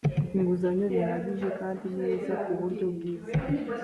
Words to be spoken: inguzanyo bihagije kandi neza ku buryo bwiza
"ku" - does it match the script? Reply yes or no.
yes